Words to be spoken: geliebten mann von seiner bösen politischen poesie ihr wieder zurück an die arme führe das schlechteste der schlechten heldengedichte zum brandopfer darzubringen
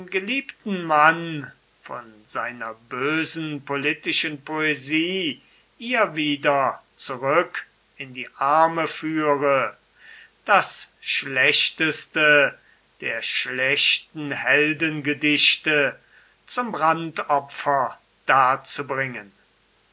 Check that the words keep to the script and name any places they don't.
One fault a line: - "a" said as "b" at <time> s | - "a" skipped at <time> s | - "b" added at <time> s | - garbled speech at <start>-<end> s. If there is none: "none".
- "an" said as "in" at 8.0 s